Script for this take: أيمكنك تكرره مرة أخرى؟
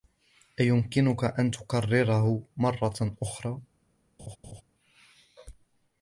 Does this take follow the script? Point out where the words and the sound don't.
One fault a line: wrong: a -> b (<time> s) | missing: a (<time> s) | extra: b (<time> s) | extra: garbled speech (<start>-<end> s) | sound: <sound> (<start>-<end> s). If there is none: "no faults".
extra: أن (1.2 s)
sound: laugh (4.2-4.6 s)